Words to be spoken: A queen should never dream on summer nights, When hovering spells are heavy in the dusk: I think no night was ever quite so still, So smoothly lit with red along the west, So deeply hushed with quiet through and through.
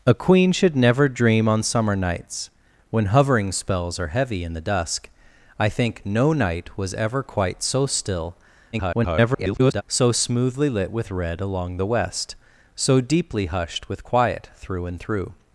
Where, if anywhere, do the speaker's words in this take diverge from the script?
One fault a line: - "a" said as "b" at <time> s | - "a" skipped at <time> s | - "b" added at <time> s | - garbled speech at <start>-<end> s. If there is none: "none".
- garbled speech at 8.7-9.8 s